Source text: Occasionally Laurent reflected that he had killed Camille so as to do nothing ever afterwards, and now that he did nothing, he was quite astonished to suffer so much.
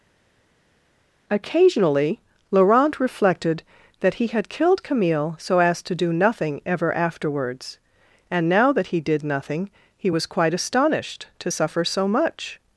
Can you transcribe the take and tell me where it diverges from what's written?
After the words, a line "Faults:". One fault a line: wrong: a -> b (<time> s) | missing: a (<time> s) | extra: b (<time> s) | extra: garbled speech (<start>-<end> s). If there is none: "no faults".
Occasionally Laurent reflected that he had killed Camille so as to do nothing ever afterwards, and now that he did nothing, he was quite astonished to suffer so much.
Faults:
no faults